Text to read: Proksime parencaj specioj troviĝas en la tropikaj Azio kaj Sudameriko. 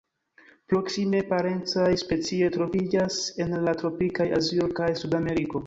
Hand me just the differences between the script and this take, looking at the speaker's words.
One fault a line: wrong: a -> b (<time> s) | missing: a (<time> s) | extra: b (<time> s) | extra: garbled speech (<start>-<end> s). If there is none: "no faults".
no faults